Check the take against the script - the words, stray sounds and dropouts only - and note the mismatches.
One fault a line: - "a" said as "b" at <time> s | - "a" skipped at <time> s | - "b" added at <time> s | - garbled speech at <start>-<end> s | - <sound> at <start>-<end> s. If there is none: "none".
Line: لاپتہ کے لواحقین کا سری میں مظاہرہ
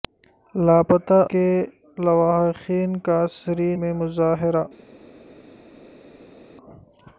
none